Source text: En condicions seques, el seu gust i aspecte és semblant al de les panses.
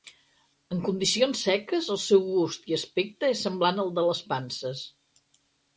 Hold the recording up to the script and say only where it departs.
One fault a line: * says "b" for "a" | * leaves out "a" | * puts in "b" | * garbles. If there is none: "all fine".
all fine